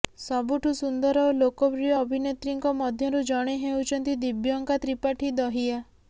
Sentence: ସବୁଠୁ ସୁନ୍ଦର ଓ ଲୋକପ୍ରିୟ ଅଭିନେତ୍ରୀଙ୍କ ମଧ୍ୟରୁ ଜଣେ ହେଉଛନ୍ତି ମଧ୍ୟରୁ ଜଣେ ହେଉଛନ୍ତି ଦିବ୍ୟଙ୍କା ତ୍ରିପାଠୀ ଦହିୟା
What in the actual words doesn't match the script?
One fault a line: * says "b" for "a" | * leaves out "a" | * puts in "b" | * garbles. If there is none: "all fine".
* leaves out "ମଧ୍ୟରୁ ଜଣେ ହେଉଛନ୍ତି"